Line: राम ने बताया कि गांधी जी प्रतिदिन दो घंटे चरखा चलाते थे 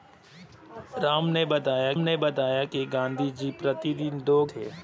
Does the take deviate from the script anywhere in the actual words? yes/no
yes